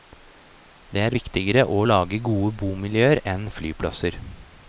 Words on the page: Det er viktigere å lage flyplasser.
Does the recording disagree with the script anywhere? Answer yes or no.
yes